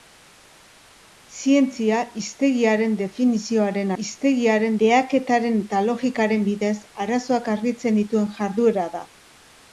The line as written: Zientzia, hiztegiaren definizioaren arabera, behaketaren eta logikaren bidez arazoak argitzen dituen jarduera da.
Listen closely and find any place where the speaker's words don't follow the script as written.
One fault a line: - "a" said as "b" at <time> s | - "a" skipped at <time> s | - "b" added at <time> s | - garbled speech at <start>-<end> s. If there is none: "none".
- "arabera" said as "hiztegiaren" at 4.0 s